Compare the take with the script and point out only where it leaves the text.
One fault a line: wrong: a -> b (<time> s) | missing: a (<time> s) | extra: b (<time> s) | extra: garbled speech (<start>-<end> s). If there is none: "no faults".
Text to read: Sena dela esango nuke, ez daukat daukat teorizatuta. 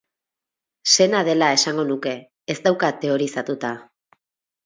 missing: daukat (3.0 s)